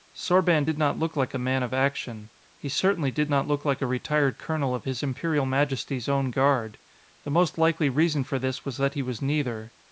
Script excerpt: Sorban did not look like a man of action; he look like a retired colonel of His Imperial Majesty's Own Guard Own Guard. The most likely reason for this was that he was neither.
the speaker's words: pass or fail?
fail